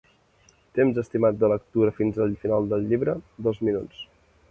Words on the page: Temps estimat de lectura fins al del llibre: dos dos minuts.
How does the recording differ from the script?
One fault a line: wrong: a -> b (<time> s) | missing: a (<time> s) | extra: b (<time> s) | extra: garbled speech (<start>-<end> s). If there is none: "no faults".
extra: final (2.5 s)
missing: dos (3.6 s)